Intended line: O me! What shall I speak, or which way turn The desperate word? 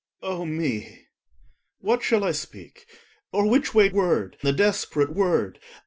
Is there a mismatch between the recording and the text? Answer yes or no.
yes